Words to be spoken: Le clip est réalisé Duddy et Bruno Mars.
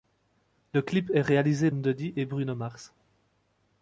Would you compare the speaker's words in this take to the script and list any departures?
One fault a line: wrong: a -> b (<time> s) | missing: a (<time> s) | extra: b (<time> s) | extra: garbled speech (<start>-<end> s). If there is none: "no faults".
no faults